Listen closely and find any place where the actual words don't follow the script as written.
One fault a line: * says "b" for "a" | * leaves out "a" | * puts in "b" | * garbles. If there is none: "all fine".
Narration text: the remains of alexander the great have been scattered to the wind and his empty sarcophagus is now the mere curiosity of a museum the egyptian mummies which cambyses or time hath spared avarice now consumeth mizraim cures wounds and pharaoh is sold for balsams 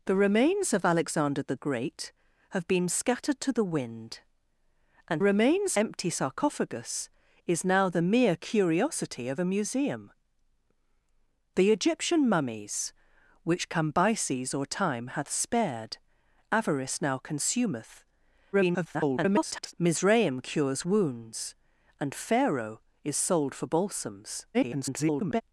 * says "remains" for "his"
* garbles
* garbles